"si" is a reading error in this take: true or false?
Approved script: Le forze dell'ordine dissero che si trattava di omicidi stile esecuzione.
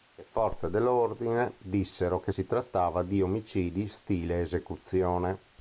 false